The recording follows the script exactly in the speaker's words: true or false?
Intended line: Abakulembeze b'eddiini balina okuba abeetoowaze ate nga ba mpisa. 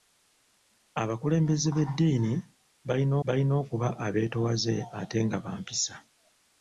false